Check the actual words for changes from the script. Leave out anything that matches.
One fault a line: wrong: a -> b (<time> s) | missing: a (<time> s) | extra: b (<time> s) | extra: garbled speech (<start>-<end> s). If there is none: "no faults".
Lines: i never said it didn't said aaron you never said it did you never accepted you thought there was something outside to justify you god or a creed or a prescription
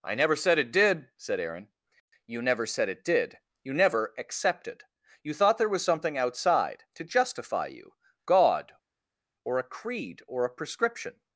wrong: didn't -> did (0.7 s)